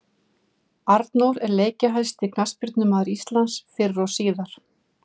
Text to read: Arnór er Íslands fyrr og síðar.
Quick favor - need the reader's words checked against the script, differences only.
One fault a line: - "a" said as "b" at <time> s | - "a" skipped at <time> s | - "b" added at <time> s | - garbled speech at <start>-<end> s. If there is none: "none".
- "leikjahæsti knattspyrnumaður" added at 1.6 s